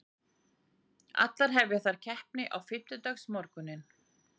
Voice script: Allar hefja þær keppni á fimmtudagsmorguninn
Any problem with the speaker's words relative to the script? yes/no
no